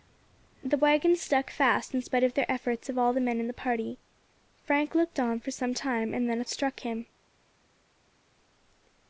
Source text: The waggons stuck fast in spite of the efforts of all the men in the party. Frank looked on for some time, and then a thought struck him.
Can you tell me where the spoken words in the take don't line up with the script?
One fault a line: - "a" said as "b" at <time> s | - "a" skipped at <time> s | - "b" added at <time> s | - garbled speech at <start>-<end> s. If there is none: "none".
- "thought" skipped at 6.4 s